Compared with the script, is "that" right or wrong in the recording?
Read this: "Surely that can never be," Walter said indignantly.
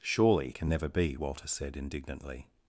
wrong